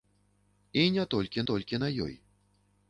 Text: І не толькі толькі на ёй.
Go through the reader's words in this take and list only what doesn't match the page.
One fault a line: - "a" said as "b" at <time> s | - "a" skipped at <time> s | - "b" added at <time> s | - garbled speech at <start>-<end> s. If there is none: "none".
none